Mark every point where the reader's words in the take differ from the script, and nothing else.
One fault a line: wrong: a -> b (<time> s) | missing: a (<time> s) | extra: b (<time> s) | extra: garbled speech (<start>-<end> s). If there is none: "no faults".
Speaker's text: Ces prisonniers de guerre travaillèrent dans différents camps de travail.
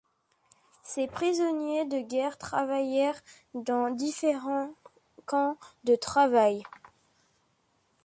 no faults